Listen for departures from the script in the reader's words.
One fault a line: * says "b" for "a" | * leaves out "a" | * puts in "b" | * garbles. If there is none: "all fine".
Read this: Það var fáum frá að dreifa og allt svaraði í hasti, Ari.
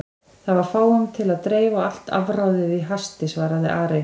* says "til" for "frá"
* says "afráðið" for "svaraði"
* puts in "svaraði"